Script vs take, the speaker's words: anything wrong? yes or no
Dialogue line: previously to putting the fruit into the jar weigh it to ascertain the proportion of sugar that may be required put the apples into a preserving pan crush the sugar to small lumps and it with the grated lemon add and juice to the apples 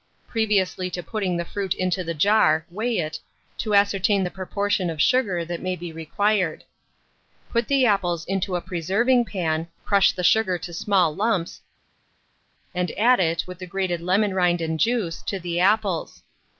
yes